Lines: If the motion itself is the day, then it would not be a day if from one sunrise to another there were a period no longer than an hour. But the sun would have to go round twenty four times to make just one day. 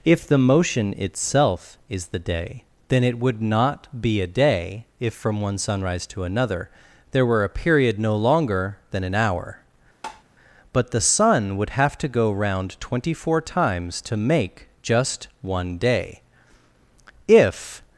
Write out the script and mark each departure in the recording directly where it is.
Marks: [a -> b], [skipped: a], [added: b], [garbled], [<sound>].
If the motion itself is the day, then it would not be a day if from one sunrise to another there were a period no longer than an hour. [tap] But the sun would have to go round twenty four times to make just one day. [added: If]